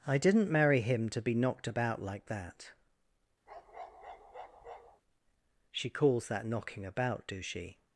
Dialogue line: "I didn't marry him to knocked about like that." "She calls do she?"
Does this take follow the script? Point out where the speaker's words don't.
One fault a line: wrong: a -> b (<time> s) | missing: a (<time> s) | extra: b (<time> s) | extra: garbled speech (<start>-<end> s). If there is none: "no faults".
extra: be (1.2 s)
extra: that knocking about (6.3 s)